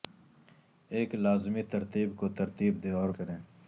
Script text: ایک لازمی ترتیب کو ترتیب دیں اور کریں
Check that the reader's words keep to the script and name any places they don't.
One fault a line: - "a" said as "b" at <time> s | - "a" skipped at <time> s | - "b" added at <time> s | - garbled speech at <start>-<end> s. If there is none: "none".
none